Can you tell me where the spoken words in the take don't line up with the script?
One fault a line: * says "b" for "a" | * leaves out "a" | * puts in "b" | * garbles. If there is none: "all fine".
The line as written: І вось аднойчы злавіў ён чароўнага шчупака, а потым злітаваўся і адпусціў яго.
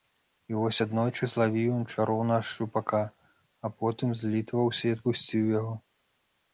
all fine